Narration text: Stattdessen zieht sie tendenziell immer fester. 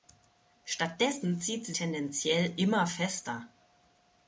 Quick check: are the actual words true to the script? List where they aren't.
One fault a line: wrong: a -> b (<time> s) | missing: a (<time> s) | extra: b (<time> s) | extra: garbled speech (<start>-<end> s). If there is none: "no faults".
no faults